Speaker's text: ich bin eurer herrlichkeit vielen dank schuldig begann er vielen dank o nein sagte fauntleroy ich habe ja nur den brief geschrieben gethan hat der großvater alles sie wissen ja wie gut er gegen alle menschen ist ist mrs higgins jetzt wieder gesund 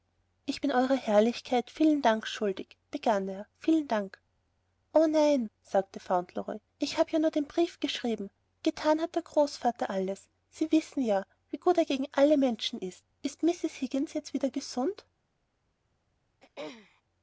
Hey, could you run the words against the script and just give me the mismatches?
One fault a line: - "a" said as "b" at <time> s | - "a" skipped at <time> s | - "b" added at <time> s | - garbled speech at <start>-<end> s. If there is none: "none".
none